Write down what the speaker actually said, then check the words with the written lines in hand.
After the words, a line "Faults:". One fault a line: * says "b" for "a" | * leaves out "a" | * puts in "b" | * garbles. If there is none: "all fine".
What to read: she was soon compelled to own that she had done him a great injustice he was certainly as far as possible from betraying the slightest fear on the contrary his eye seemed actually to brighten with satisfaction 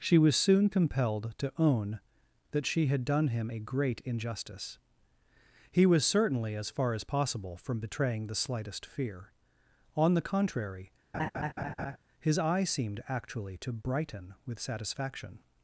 she was soon compelled to own that she had done him a great injustice he was certainly as far as possible from betraying the slightest fear on the contrary his eye seemed actually to brighten with satisfaction
Faults:
all fine